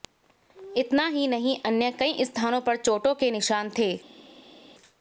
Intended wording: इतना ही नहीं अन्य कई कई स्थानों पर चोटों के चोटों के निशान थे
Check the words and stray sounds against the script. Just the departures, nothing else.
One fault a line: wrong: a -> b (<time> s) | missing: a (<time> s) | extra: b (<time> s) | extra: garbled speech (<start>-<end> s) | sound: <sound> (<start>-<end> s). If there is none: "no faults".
missing: कई (2.2 s)
missing: चोटों के (3.3 s)